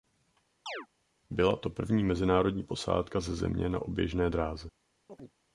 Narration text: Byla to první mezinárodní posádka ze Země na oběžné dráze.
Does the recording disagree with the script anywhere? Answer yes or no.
no